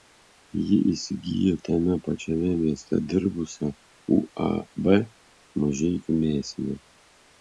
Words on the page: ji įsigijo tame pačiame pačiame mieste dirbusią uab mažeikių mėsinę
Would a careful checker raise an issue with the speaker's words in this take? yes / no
yes